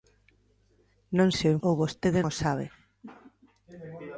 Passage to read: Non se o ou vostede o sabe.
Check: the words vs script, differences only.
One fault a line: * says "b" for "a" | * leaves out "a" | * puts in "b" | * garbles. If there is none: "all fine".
all fine